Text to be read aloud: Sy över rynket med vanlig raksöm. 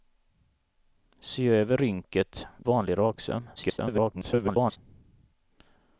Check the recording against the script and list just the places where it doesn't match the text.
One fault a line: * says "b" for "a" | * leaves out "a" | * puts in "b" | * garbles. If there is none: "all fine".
* leaves out "med"
* garbles